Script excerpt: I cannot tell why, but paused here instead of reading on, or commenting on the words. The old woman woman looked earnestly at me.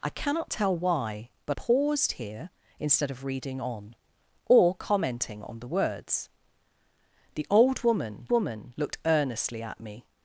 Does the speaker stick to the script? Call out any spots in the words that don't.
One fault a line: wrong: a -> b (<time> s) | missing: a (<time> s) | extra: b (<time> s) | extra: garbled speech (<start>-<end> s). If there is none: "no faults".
no faults